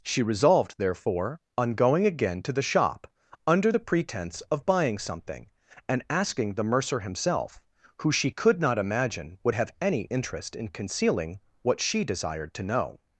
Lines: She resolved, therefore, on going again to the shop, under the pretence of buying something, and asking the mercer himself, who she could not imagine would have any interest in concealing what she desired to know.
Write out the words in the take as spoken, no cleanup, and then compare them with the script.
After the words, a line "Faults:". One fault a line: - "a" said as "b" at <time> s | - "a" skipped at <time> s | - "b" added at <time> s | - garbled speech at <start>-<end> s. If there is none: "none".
She resolved, therefore, on going again to the shop, under the pretence of buying something, and asking the mercer himself, who she could not imagine would have any interest in concealing what she desired to know.
Faults:
none